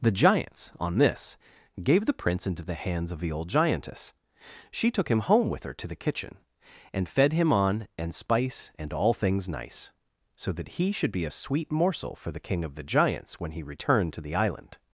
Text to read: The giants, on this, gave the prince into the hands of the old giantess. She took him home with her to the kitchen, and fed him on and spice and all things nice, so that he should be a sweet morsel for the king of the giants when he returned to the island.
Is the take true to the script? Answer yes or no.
yes